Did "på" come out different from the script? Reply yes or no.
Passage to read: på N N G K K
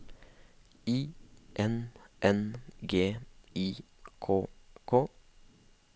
yes